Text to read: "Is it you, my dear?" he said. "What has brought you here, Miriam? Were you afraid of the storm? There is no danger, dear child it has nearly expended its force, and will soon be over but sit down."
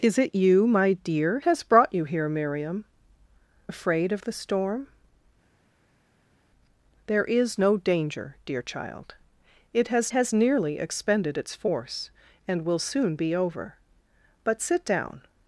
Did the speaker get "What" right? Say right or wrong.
wrong